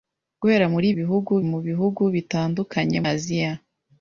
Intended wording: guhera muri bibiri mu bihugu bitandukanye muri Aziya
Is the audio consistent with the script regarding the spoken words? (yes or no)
no